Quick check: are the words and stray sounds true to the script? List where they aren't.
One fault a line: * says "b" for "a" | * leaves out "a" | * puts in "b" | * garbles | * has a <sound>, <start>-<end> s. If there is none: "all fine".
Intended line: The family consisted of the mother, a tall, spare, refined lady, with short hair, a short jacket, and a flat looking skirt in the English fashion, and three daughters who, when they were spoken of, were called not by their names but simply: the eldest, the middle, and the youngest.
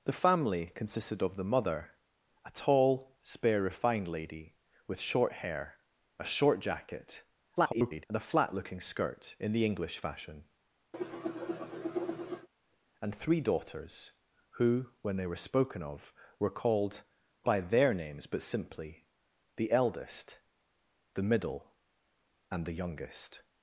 * garbles
* has a cough, 10.9-12.5 s
* leaves out "not"